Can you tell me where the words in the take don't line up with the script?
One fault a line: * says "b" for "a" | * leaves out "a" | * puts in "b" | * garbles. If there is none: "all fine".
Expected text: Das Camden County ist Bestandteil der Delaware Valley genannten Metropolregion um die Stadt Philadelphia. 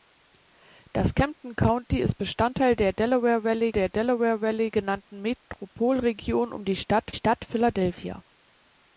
* puts in "der Delaware Valley"
* puts in "Stadt"